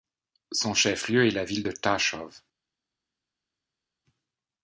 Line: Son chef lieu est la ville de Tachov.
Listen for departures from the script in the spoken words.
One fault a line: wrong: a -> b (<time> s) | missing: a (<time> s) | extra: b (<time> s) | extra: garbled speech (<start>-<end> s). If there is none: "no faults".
no faults